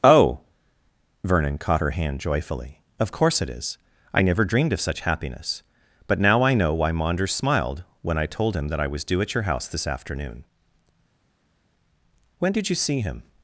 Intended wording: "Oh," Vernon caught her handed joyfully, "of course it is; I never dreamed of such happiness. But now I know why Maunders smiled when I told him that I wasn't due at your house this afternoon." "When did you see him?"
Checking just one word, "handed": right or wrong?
wrong